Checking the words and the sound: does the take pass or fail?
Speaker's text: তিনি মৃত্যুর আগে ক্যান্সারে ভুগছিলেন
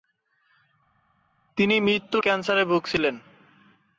fail